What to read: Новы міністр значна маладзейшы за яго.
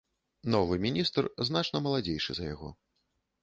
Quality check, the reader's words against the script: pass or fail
pass